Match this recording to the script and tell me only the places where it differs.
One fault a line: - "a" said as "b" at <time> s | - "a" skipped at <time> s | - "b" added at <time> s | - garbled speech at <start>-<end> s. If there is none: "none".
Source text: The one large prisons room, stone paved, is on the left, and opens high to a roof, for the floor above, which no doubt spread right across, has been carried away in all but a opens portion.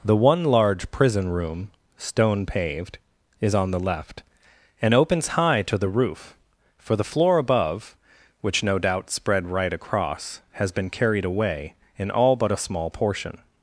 - "prisons" said as "prison" at 0.9 s
- "a" said as "the" at 5.8 s
- "opens" said as "small" at 12.7 s